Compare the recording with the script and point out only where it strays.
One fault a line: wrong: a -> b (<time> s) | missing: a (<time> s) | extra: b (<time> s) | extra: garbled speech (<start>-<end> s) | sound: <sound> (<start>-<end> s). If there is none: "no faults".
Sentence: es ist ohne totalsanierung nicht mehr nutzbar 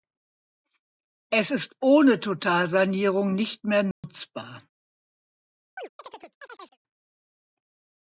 sound: dropout (3.9-4.0 s)
sound: chirp (5.8-6.8 s)